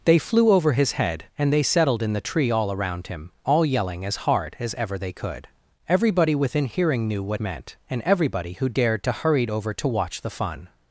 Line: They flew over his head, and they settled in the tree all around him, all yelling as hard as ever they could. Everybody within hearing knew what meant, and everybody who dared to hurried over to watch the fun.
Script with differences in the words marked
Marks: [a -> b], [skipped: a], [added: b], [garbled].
They flew over his head, and they settled in the tree all around him, all yelling as hard as ever they could. Everybody within hearing knew what meant, and everybody who dared to hurried over to watch the fun.